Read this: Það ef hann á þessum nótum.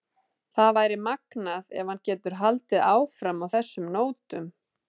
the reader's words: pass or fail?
fail